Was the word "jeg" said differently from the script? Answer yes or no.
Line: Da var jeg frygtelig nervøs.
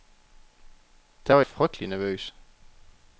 yes